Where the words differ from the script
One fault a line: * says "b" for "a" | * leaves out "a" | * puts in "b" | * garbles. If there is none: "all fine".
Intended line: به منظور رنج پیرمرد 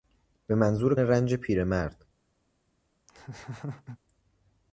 all fine